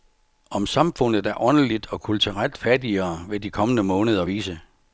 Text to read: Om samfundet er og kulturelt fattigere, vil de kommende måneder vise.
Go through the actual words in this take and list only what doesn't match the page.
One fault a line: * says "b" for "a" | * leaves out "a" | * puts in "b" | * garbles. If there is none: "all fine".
* puts in "åndeligt"